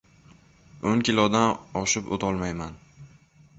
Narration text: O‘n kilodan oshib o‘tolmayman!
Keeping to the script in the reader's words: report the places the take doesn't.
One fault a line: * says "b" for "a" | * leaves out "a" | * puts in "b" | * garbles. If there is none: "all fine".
all fine